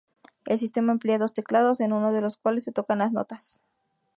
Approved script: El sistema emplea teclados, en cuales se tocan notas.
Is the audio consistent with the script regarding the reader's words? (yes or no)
no